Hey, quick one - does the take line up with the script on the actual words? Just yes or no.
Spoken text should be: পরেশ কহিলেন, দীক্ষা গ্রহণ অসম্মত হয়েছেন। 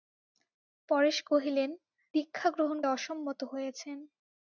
yes